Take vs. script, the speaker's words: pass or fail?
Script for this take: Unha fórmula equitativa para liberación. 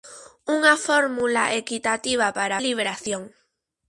pass